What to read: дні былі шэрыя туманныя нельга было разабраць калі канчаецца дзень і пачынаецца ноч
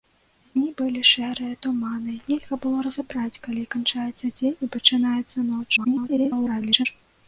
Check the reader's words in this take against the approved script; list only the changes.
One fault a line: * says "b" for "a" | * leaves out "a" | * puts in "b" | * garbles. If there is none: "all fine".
* garbles